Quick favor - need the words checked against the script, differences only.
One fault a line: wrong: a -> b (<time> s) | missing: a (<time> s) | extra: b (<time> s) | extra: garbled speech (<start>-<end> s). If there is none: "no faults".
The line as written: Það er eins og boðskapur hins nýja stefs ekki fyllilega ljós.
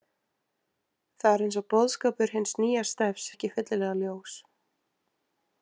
no faults